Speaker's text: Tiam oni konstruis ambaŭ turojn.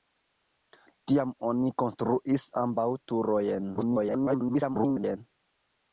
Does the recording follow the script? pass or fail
fail